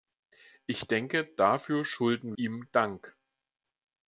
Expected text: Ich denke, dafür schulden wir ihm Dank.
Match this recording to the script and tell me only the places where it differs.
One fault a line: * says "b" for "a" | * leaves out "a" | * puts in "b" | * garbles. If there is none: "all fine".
* leaves out "wir"